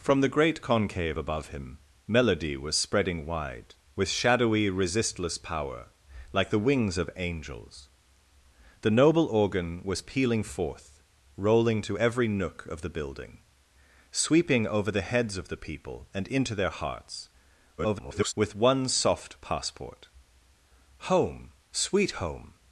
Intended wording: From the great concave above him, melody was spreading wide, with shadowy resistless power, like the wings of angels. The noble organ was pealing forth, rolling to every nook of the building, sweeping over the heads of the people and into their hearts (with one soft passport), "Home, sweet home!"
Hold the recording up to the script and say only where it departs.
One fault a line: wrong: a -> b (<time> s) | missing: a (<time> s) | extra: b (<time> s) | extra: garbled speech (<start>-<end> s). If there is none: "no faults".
extra: garbled speech (17.8-18.3 s)